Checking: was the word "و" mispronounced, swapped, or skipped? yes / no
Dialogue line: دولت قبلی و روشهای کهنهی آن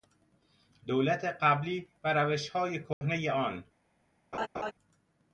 no